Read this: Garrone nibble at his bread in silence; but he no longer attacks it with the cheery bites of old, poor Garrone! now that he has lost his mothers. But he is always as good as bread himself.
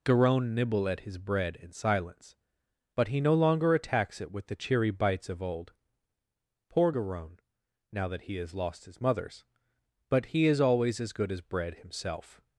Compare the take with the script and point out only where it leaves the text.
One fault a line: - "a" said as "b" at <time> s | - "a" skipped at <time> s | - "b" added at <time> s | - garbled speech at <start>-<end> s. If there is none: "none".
none